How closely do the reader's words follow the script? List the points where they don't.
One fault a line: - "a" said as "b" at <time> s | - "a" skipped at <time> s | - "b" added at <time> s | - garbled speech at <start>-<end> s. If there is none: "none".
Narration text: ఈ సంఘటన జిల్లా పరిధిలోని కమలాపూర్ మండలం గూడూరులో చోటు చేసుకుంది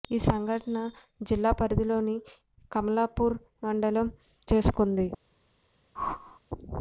- "గూడూరులో చోటు" skipped at 4.1 s